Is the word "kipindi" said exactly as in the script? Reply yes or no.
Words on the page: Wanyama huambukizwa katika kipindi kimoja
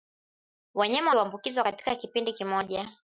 yes